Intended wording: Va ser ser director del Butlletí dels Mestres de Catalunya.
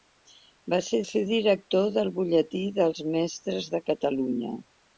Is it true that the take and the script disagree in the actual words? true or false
false